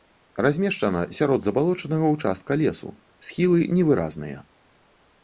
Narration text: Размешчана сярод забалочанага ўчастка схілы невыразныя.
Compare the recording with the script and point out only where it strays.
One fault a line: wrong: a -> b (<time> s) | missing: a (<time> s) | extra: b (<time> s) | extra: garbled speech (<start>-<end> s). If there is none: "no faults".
extra: лесу (2.6 s)